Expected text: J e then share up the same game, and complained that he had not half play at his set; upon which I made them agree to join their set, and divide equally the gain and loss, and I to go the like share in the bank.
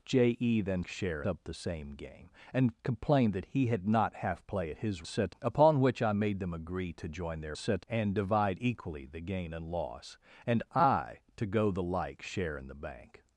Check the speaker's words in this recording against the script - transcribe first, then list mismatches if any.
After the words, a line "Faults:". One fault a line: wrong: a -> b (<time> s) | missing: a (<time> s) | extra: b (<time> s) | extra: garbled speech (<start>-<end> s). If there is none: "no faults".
J e then share up the same game, and complained that he had not half play at his set; upon which I made them agree to join their set, and divide equally the gain and loss, and I to go the like share in the bank.
Faults:
no faults